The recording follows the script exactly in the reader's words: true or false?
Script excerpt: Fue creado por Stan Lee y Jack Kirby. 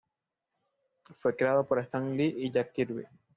true